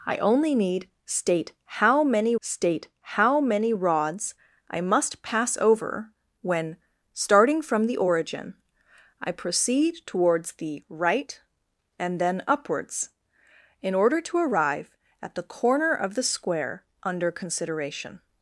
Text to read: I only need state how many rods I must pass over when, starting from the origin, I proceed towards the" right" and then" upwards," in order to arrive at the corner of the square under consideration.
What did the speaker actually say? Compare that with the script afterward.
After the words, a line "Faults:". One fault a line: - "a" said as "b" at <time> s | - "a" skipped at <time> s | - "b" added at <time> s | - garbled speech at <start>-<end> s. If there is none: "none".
I only need state how many state how many rods I must pass over when, starting from the origin, I proceed towards the" right" and then" upwards," in order to arrive at the corner of the square under consideration.
Faults:
- "state how many" added at 2.4 s